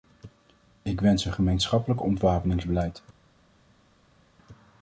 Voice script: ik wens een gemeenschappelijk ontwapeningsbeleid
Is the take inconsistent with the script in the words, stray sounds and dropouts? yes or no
no